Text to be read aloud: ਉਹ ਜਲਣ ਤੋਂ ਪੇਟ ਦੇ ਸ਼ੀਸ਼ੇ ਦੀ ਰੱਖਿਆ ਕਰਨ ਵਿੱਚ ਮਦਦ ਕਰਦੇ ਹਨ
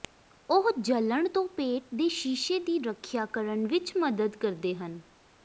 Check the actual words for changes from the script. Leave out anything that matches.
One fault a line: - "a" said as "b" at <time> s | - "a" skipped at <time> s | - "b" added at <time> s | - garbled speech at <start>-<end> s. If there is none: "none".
none